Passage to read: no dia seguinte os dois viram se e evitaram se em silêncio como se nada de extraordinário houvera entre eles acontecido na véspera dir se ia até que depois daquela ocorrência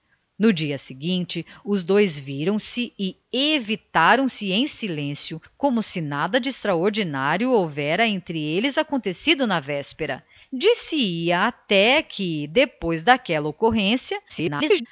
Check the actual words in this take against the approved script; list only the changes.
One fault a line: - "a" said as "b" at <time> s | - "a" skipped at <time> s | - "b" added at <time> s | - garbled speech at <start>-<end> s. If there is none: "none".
- garbled speech at 14.3-14.9 s